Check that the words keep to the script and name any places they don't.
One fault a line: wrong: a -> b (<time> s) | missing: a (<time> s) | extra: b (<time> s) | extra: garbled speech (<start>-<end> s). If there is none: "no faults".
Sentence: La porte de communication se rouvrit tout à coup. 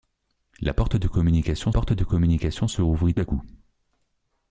extra: porte de communication (1.7 s)
missing: tout (3.2 s)